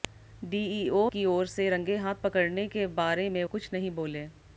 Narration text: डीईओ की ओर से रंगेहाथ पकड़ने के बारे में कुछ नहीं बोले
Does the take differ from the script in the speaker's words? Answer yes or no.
no